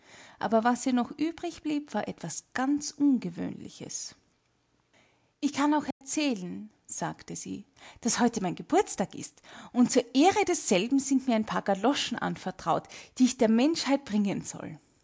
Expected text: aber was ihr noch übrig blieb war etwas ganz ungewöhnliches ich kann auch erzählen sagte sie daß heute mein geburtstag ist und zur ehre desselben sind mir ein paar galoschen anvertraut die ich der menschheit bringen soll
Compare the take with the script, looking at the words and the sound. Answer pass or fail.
fail